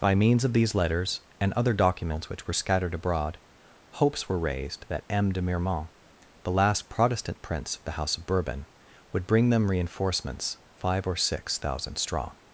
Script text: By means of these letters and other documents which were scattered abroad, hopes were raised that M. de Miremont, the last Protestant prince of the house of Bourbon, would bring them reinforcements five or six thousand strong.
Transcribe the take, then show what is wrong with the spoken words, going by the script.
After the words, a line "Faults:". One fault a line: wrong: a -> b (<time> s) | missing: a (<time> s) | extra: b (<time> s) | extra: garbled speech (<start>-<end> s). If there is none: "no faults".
By means of these letters and other documents which were scattered abroad, hopes were raised that M. de Miremont, the last Protestant prince of the house of Bourbon, would bring them reinforcements five or six thousand strong.
Faults:
no faults